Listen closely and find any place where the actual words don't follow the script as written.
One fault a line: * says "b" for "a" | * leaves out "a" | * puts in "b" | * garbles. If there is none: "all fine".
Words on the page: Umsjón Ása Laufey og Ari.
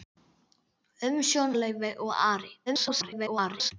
* leaves out "Ása"
* garbles